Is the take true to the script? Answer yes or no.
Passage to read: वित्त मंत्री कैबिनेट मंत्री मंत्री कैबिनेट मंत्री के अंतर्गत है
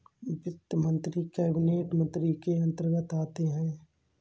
no